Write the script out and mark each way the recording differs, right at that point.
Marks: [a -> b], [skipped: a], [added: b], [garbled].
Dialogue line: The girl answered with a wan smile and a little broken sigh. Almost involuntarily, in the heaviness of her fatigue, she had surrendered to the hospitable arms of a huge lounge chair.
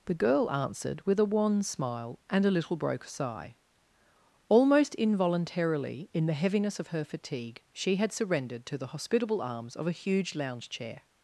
The girl answered with a wan smile and a little [broken -> broke] sigh. Almost involuntarily, in the heaviness of her fatigue, she had surrendered to the hospitable arms of a huge lounge chair.